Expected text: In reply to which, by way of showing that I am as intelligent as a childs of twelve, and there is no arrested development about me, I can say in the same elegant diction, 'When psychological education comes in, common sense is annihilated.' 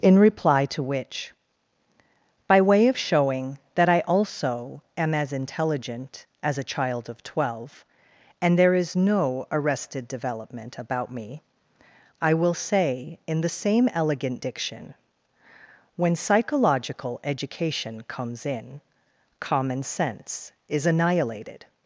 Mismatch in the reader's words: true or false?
true